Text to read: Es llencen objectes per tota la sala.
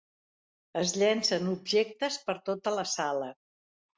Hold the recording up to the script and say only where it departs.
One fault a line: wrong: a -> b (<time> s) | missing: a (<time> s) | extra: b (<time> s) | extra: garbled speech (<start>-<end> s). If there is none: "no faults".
no faults